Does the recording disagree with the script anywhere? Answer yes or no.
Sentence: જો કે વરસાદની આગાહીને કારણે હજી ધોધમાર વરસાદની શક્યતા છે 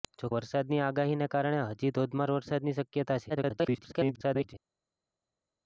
yes